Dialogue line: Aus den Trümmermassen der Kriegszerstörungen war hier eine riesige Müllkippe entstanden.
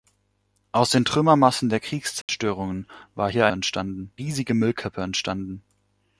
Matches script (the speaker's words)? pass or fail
fail